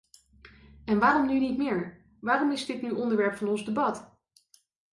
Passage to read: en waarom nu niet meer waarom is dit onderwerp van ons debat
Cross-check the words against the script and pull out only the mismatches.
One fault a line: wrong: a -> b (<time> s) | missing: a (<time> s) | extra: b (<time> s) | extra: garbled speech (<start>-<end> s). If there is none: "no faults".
extra: nu (2.8 s)